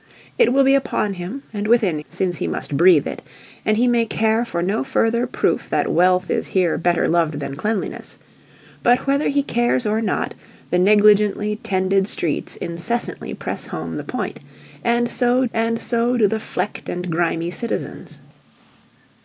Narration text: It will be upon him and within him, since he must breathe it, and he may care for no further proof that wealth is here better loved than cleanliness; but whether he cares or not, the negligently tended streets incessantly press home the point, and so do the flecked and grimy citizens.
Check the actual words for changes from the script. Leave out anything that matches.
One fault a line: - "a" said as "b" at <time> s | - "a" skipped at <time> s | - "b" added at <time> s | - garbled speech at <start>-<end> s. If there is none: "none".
- "him" skipped at 2.0 s
- "and so" added at 15.5 s